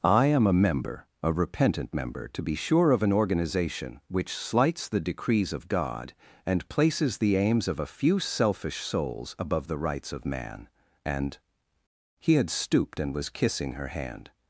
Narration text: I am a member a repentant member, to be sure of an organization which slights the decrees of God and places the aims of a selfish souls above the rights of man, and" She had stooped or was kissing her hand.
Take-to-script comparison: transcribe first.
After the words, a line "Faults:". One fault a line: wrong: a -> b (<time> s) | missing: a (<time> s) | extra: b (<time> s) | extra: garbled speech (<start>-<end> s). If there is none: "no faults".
I am a member a repentant member, to be sure of an organization which slights the decrees of God and places the aims of a few selfish souls above the rights of man, and" He had stooped and was kissing her hand.
Faults:
extra: few (7.8 s)
wrong: She -> He (12.2 s)
wrong: or -> and (13.0 s)